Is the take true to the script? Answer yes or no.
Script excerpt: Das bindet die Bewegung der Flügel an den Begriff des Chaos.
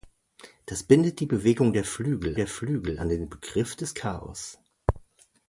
no